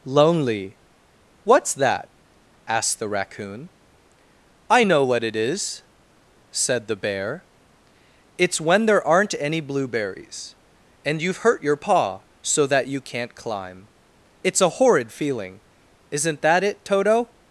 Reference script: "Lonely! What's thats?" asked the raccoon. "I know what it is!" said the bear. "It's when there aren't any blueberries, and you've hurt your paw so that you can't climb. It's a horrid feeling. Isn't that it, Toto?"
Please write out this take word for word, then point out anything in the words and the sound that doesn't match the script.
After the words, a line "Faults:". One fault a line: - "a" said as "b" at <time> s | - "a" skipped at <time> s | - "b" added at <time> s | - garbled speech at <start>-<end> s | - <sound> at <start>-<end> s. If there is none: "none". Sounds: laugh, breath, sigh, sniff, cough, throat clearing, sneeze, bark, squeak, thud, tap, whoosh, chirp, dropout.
"Lonely! What's that?" asked the raccoon. "I know what it is!" said the bear. "It's when there aren't any blueberries, and you've hurt your paw so that you can't climb. It's a horrid feeling. Isn't that it, Toto?"
Faults:
- "thats" said as "that" at 1.7 s